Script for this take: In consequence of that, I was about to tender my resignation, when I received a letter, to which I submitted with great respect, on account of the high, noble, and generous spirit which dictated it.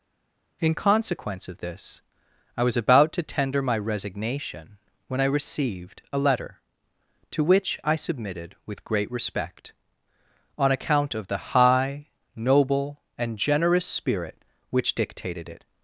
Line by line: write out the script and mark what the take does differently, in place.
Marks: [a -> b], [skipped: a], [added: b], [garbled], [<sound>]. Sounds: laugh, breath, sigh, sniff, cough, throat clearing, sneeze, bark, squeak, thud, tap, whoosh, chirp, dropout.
In consequence of [that, -> this] I was about to tender my resignation, when I received a letter, to which I submitted with great respect, on account of the high, noble, and generous spirit which dictated it.